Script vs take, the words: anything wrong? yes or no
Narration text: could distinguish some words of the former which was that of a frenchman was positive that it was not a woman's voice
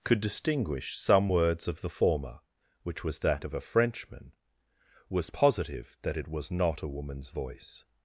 no